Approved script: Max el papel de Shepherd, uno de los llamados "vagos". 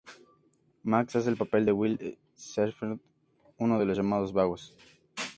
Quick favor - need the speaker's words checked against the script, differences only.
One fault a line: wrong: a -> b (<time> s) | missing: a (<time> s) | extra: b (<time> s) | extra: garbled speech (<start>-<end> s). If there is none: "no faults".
extra: hace (1.1 s)
extra: Will (1.7 s)